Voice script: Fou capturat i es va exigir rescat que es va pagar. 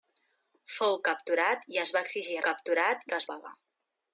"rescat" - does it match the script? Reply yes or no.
no